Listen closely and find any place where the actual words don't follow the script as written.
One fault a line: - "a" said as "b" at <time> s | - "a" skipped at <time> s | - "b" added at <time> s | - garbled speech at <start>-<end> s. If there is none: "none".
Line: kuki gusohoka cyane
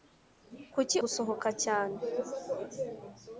none